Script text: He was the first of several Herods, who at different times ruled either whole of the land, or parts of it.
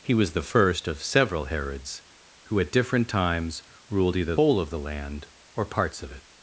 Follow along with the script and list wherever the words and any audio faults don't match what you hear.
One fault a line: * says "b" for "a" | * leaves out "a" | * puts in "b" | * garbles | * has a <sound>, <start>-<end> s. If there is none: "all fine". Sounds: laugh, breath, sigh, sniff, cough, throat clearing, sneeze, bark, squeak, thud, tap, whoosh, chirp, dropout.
all fine